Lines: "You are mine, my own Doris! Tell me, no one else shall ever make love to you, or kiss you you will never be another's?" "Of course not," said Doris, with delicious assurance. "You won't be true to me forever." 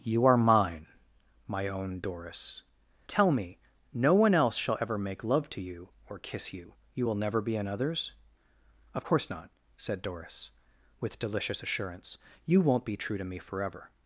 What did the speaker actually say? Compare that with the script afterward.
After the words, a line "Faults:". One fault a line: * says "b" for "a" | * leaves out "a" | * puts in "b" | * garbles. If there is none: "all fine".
"You are mine, my own Doris! Tell me, no one else shall ever make love to you, or kiss you you will never be another's?" "Of course not," said Doris, with delicious assurance. "You won't be true to me forever."
Faults:
all fine